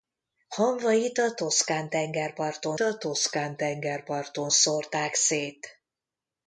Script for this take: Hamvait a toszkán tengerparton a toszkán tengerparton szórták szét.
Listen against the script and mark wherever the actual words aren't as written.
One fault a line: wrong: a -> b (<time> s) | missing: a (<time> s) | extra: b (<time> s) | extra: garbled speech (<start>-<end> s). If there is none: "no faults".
no faults